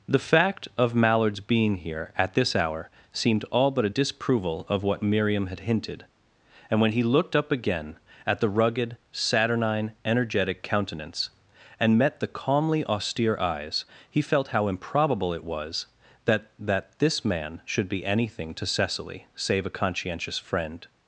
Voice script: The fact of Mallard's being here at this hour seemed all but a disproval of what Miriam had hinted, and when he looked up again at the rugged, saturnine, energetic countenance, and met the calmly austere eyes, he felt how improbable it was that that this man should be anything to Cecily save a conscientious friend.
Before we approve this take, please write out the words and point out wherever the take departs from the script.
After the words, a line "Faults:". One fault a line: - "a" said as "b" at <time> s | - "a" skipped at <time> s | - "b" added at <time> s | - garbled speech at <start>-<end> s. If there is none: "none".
The fact of Mallard's being here at this hour seemed all but a disproval of what Miriam had hinted, and when he looked up again at the rugged, saturnine, energetic countenance, and met the calmly austere eyes, he felt how improbable it was that that this man should be anything to Cecily save a conscientious friend.
Faults:
none